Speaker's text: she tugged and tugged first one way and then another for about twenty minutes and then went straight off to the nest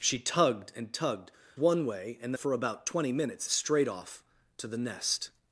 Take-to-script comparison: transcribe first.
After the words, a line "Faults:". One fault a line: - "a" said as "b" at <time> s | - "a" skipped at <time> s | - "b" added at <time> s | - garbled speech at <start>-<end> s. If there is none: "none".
she tugged and tugged one way and for about twenty minutes straight off to the nest
Faults:
- "first" skipped at 1.3 s
- "then another" skipped at 2.3 s
- "and then went" skipped at 3.5 s